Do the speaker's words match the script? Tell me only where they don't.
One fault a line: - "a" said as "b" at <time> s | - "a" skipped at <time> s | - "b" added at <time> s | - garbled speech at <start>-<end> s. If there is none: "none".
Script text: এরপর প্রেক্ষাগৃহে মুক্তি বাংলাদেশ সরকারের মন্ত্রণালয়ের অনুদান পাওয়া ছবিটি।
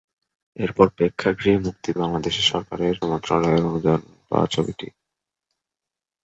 none